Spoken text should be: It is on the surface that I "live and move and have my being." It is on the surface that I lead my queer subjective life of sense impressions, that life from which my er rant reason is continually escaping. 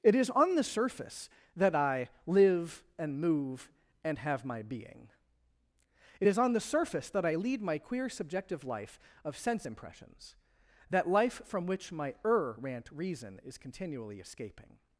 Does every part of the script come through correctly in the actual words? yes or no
yes